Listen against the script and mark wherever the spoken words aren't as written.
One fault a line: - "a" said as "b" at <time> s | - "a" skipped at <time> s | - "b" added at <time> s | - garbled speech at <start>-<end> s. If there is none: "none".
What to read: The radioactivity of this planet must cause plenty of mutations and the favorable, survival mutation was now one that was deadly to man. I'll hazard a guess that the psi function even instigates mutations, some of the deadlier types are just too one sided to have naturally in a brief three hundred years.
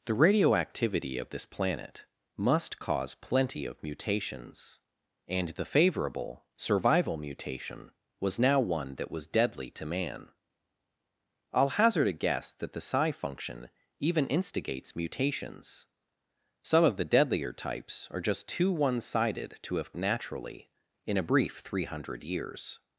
none